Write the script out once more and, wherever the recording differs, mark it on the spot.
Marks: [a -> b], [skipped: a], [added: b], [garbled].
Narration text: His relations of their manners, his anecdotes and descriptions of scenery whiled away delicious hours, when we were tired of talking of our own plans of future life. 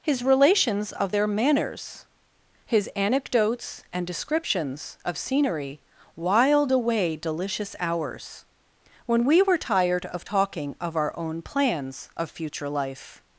His relations of their manners, his anecdotes and descriptions of scenery whiled away delicious hours, when we were tired of talking of our own plans of future life.